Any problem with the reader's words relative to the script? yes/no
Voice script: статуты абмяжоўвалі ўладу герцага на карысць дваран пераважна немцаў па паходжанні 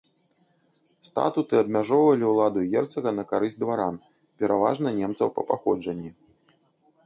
no